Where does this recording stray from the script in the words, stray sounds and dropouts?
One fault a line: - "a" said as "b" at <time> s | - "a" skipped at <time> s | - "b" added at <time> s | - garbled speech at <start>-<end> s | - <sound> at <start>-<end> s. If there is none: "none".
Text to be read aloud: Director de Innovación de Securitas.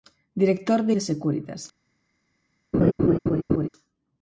- "Innovación" skipped at 0.9 s
- laugh at 2.7-3.7 s